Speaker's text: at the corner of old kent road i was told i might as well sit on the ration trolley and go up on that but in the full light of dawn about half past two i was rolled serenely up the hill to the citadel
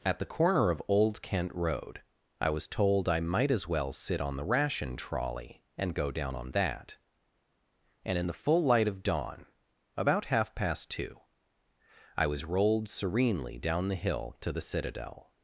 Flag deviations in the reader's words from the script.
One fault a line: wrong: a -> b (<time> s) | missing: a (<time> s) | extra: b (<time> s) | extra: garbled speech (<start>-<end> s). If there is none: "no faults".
wrong: up -> down (6.1 s)
wrong: but -> and (8.0 s)
wrong: up -> down (13.6 s)